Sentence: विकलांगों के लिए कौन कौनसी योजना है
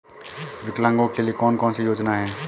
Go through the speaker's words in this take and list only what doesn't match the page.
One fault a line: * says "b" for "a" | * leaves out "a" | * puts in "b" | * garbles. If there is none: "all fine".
all fine